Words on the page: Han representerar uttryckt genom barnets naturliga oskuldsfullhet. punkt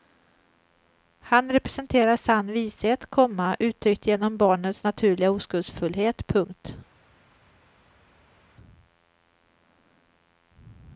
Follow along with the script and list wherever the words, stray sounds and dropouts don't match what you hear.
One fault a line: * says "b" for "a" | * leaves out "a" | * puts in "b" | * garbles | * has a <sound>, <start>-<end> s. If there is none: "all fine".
* puts in "sann vishet komma"